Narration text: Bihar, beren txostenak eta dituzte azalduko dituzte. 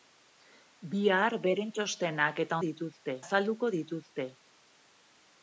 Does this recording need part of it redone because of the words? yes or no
no